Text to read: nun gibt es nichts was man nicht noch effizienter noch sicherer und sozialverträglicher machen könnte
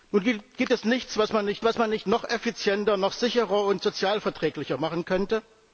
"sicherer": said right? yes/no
yes